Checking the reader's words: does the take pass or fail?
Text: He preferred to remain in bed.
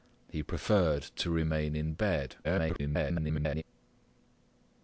fail